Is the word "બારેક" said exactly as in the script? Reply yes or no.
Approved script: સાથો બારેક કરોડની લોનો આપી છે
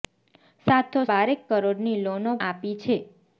yes